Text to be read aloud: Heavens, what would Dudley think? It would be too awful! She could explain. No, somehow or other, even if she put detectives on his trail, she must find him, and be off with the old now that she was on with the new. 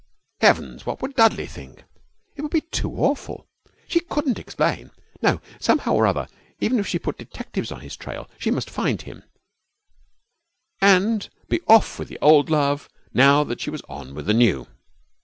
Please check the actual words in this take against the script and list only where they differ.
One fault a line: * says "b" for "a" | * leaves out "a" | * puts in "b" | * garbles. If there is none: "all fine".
* says "couldn't" for "could"
* puts in "love"